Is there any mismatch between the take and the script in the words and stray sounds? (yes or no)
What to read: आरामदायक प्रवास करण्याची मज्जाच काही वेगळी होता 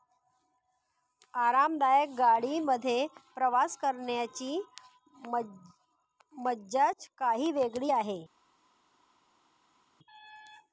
yes